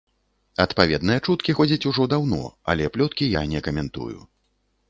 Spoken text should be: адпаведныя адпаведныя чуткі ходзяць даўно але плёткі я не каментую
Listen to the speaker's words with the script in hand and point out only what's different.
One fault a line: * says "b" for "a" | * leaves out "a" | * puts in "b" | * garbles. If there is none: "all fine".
* leaves out "адпаведныя"
* puts in "ужо"